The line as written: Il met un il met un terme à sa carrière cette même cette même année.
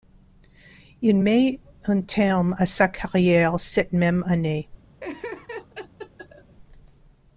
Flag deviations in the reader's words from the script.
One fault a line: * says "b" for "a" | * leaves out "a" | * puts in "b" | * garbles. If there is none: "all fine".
* leaves out "il met un"
* leaves out "cette même"